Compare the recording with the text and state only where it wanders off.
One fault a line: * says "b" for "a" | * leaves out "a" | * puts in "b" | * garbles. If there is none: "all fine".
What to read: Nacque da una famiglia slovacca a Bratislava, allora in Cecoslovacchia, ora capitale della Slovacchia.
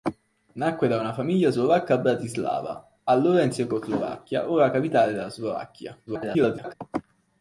* garbles